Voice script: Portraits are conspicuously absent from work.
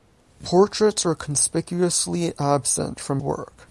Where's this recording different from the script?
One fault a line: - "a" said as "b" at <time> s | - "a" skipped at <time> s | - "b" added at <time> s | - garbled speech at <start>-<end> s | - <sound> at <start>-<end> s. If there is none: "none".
none